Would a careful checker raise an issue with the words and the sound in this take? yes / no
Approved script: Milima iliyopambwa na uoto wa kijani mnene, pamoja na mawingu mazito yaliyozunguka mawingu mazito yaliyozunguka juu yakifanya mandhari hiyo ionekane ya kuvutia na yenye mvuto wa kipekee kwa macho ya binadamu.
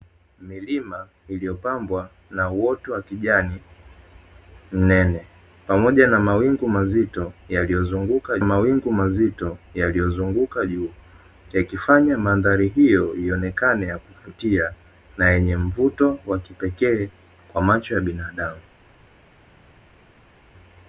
no